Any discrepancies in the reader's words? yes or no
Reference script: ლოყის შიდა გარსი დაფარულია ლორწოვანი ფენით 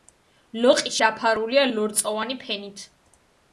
yes